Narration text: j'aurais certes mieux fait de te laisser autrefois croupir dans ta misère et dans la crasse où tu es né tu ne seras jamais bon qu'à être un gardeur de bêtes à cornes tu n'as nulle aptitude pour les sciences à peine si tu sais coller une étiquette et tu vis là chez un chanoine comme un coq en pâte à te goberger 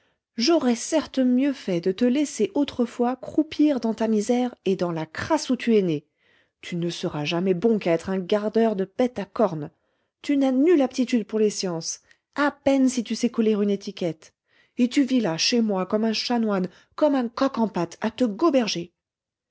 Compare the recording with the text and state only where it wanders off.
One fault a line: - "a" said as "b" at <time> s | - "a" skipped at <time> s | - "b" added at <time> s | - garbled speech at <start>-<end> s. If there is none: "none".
- "moi comme" added at 15.6 s